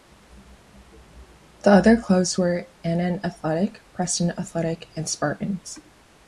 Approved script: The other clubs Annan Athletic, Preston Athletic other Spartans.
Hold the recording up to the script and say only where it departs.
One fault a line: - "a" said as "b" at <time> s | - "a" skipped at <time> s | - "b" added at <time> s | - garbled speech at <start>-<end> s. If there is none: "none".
- "were" added at 2.4 s
- "other" said as "and" at 4.9 s